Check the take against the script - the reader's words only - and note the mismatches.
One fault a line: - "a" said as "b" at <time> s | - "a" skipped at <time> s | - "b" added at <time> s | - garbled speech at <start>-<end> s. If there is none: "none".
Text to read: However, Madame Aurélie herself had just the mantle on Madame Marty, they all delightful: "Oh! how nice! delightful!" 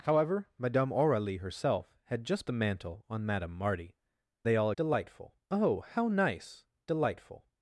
none